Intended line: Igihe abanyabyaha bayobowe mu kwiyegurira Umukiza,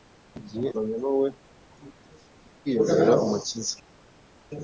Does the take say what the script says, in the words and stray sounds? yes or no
no